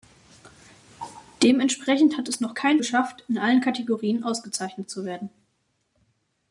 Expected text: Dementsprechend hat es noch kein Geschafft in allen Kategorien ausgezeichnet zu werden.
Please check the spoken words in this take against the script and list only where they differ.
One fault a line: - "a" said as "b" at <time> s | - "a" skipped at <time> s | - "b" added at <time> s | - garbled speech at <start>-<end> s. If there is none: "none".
none